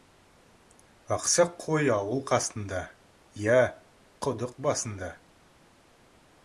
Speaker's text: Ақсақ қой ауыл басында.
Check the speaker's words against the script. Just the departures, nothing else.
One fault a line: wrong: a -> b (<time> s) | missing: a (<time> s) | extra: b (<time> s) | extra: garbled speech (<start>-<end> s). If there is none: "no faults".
extra: қасында иә құдық (2.3 s)